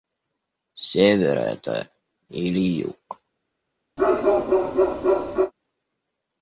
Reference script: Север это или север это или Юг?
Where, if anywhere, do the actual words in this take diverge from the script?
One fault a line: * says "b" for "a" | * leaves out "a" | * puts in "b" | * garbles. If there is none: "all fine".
* leaves out "север это или"